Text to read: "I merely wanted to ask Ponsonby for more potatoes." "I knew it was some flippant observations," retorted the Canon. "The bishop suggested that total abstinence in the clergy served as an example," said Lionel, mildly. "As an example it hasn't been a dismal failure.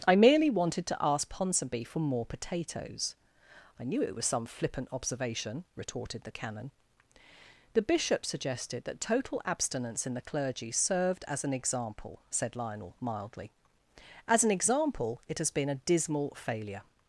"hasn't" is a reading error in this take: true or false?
true